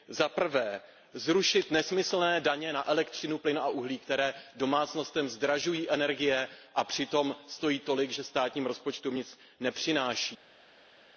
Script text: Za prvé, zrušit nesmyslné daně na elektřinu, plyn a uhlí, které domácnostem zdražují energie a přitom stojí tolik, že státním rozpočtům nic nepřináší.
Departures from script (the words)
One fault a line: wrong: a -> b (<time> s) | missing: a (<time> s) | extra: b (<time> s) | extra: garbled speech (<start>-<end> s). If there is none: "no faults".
no faults